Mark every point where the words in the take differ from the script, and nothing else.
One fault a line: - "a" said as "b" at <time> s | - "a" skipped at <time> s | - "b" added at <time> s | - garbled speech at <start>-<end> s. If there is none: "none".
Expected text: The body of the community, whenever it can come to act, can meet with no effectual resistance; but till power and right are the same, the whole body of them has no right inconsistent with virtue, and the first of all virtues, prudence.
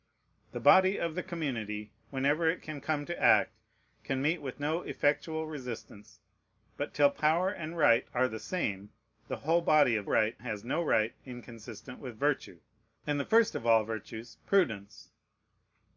- "them" said as "right" at 10.1 s